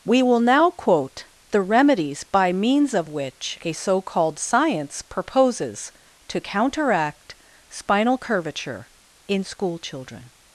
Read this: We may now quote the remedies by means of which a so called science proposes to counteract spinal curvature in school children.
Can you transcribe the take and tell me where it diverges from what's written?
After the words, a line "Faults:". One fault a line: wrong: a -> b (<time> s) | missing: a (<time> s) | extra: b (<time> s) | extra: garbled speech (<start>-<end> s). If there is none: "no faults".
We will now quote the remedies by means of which a so called science proposes to counteract spinal curvature in school children.
Faults:
wrong: may -> will (0.2 s)